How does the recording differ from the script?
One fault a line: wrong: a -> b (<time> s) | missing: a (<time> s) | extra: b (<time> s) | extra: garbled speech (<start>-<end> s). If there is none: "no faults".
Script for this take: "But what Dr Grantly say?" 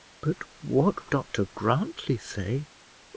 no faults